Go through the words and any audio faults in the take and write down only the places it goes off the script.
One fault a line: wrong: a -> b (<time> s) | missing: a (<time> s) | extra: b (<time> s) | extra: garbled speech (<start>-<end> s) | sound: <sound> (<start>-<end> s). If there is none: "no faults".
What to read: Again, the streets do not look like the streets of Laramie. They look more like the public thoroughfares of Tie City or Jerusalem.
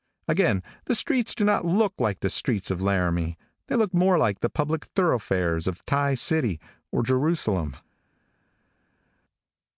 no faults